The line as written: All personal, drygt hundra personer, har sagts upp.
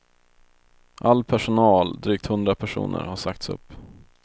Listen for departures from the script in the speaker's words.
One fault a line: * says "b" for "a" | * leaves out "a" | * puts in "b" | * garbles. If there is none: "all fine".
all fine